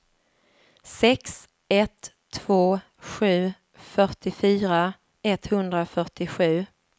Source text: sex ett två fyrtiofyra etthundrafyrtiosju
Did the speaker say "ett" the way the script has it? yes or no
yes